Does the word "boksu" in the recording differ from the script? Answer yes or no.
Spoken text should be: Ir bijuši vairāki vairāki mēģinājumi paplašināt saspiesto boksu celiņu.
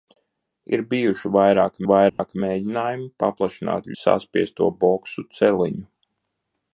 no